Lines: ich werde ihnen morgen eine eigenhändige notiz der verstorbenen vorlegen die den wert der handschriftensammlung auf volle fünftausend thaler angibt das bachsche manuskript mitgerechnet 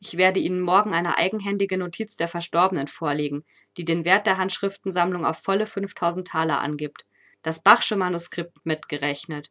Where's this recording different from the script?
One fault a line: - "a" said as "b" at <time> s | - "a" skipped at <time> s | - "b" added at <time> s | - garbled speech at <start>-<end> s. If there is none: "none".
none